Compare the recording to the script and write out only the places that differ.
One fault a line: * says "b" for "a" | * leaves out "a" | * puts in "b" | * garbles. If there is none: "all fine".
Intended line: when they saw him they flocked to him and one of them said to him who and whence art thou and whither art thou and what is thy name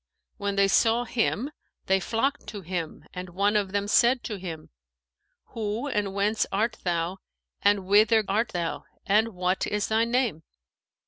all fine